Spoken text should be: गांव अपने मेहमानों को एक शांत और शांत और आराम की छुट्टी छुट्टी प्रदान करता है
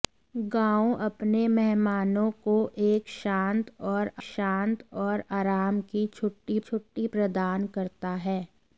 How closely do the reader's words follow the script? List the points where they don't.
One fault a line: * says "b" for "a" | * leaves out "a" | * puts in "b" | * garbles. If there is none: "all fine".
all fine